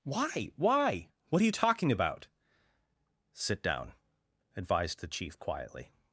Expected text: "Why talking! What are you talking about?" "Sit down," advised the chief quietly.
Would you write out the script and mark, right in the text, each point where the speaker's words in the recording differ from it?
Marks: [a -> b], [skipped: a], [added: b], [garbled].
"Why [talking! -> why] What are you talking about?" "Sit down," advised the chief quietly.